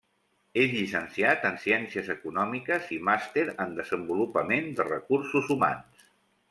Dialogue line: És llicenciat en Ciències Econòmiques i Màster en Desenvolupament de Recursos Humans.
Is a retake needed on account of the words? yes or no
no